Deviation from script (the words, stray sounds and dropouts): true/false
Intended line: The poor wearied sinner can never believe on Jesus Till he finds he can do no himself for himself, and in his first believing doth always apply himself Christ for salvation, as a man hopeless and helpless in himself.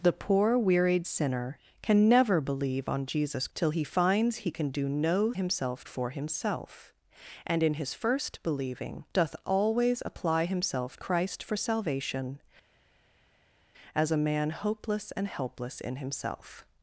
false